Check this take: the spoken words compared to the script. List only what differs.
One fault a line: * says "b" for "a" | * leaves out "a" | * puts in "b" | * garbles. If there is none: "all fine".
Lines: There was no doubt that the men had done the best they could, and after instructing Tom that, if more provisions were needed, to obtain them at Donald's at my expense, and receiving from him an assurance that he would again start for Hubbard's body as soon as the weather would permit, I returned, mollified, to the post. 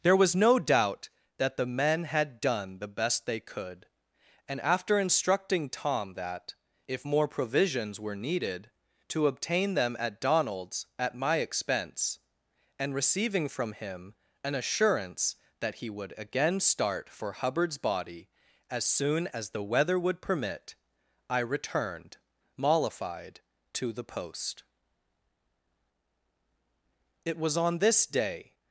* puts in "It was on this day"